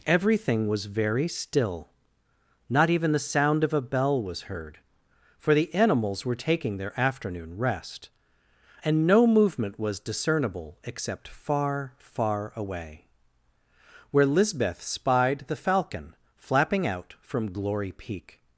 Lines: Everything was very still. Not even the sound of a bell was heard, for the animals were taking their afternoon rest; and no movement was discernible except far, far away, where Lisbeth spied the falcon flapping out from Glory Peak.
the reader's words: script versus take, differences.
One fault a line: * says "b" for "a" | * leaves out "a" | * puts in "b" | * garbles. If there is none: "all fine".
all fine